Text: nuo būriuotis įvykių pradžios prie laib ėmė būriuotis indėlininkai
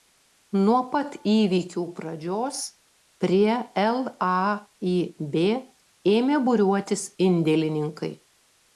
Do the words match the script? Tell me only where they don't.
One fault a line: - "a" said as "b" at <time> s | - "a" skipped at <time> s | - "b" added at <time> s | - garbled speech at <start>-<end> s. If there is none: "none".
- "būriuotis" said as "pat" at 0.9 s